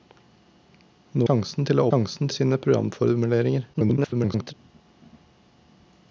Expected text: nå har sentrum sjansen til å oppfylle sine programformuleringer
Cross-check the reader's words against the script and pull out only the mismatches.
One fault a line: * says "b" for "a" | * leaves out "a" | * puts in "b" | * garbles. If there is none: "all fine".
* leaves out "har sentrum"
* says "sjansen" for "oppfylle"
* garbles